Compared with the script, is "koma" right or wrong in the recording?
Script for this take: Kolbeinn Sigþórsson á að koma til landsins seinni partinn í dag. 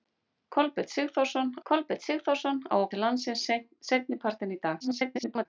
wrong